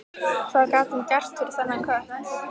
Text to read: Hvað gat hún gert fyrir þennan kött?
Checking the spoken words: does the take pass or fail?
pass